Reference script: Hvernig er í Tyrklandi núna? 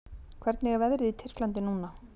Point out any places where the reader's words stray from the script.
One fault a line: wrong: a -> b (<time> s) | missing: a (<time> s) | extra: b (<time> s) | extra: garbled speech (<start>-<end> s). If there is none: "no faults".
extra: veðrið (0.8 s)